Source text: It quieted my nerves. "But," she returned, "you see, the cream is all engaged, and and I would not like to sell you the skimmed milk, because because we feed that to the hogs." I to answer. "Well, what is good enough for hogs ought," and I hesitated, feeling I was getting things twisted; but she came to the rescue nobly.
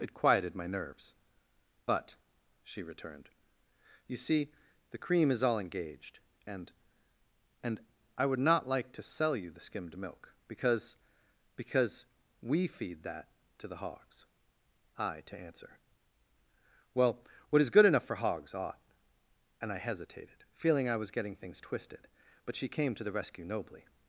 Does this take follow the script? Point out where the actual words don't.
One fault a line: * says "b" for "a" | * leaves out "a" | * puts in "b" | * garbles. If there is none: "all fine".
all fine